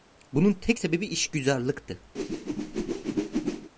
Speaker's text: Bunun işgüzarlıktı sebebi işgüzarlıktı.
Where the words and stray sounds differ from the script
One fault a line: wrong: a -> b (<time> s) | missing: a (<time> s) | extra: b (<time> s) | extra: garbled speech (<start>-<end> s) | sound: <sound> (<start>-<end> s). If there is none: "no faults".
wrong: işgüzarlıktı -> tek (0.5 s)
sound: whoosh (2.1-3.7 s)